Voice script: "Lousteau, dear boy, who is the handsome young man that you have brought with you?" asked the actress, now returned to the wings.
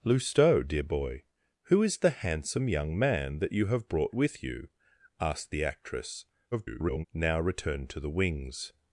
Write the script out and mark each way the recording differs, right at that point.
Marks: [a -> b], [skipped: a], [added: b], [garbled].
"Lousteau, dear boy, who is the handsome young man that you have brought with you?" asked the actress, [garbled] now returned to the wings.